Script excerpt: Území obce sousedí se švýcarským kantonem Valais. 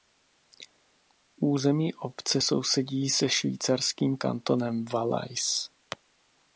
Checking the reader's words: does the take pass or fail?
pass